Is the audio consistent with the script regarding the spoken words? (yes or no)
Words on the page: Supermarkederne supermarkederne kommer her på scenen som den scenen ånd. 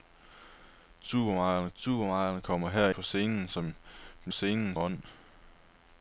yes